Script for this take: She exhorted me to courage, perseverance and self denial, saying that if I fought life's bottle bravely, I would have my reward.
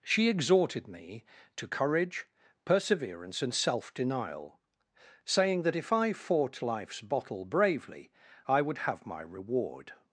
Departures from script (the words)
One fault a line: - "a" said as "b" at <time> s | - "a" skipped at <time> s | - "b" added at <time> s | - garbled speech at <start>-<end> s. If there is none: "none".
none